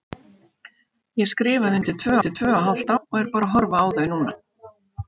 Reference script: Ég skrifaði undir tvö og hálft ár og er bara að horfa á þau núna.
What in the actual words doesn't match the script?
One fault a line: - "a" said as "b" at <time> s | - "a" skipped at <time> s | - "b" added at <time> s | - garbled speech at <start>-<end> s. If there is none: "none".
- "undir tvö" added at 2.2 s
- "ár" skipped at 2.9 s